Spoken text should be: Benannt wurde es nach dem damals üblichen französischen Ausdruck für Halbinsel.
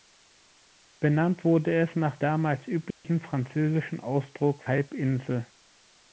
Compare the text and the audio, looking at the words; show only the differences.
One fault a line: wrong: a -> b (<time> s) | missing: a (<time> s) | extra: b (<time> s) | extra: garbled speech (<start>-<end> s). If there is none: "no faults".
missing: dem (2.2 s)
missing: für (4.6 s)